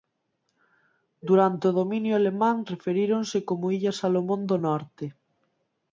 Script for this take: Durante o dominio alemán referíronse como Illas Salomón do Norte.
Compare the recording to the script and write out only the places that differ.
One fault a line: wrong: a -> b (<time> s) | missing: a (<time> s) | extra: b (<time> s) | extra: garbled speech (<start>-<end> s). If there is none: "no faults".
no faults